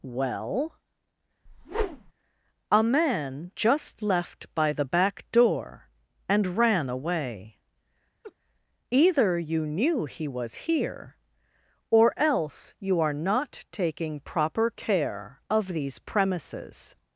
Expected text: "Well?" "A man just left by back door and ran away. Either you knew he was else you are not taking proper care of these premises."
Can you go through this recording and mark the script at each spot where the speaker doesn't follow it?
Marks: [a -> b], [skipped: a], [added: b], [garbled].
"Well?" "A man just left by [added: the] back door and ran away. Either you knew he was [added: here or] else you are not taking proper care of these premises."